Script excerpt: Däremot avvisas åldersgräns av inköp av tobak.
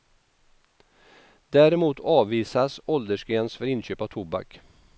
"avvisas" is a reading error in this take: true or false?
false